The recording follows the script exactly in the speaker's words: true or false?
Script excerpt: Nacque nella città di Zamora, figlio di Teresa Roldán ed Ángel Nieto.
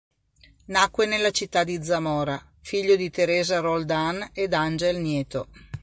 true